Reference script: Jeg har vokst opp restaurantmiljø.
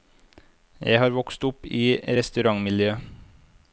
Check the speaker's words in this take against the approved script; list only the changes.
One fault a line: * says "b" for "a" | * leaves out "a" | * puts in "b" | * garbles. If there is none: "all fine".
* puts in "i"